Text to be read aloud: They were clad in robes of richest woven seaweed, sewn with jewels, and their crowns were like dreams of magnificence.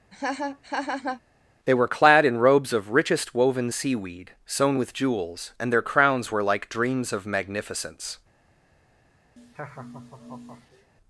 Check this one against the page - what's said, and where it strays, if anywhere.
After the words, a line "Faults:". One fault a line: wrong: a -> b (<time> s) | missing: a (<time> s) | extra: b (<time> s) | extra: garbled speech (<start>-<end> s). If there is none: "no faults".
They were clad in robes of richest woven seaweed, sewn with jewels, and their crowns were like dreams of magnificence.
Faults:
no faults